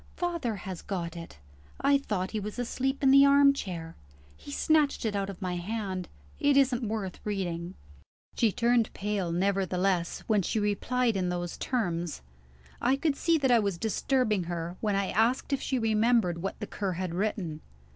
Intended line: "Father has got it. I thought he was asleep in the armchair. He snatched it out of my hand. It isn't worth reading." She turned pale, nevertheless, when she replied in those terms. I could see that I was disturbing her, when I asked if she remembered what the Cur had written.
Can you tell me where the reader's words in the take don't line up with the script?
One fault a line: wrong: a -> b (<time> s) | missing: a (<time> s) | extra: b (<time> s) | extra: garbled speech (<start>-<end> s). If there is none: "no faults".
no faults